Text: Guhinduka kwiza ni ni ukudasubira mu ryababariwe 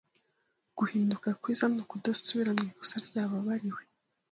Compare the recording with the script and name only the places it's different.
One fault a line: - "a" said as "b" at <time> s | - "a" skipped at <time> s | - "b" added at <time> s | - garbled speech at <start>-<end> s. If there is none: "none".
- "ni" skipped at 1.8 s
- "ikosa" added at 2.7 s